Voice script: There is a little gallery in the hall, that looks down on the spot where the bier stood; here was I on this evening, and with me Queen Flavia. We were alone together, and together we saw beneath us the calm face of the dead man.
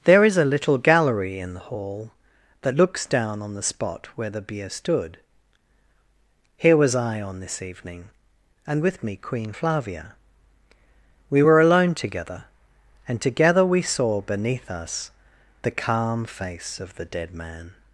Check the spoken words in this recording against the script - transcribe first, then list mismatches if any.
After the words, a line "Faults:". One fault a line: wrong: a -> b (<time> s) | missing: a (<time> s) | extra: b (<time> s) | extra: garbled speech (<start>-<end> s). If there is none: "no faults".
There is a little gallery in the hall, that looks down on the spot where the bier stood; here was I on this evening, and with me Queen Flavia. We were alone together, and together we saw beneath us the calm face of the dead man.
Faults:
no faults